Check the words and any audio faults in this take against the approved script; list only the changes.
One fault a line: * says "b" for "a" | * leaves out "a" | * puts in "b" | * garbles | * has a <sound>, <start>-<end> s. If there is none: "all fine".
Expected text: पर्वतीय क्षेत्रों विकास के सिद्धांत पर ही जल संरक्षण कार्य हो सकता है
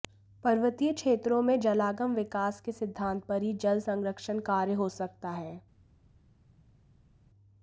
* puts in "में जलागम"